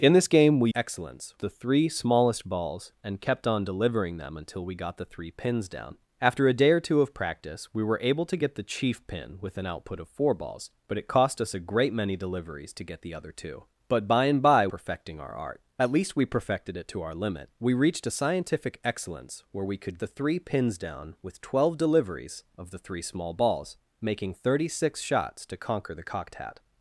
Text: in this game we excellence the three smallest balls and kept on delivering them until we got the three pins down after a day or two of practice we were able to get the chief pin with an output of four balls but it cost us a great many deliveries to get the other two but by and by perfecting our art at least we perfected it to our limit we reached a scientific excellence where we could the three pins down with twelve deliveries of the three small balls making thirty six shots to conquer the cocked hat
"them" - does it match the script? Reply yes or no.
yes